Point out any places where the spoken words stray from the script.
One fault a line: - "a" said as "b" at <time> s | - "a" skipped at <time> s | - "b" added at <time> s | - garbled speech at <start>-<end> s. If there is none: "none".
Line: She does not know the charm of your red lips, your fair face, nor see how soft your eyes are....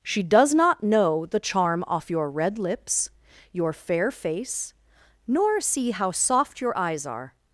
- "of" said as "off" at 1.9 s